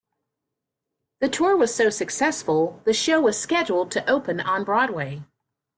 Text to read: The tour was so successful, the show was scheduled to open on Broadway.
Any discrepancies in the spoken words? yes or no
no